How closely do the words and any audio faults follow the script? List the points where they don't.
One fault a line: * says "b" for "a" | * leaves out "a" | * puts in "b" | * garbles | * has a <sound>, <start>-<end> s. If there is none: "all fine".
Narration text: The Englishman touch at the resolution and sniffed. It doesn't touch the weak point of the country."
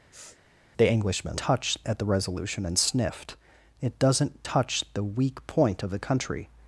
* has a sniff, 0.1-0.4 s